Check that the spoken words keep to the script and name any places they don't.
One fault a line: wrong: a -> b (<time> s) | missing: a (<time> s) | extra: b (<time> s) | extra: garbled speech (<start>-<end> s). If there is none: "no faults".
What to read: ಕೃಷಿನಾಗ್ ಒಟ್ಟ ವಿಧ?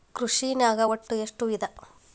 extra: ಎಷ್ಟ (1.1 s)